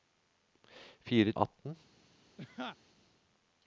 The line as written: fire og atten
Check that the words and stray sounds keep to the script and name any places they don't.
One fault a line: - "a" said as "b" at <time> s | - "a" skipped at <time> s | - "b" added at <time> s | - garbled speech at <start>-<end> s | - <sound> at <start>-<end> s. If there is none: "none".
- laugh at 2.4-2.8 s